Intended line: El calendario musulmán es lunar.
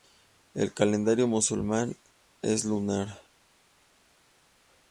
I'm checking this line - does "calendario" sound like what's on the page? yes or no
yes